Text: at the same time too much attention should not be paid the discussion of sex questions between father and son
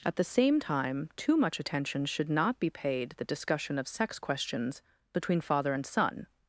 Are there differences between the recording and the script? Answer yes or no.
no